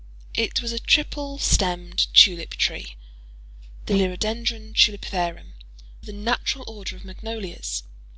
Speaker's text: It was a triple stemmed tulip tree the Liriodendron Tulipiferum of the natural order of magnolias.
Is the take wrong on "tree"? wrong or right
right